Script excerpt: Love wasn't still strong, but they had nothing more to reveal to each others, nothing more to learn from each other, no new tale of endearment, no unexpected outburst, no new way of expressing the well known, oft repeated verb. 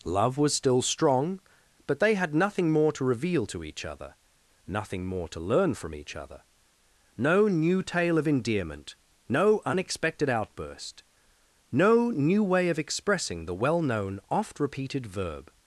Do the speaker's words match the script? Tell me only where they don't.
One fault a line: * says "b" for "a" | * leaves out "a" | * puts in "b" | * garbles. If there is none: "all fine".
* says "was" for "wasn't"
* says "other" for "others"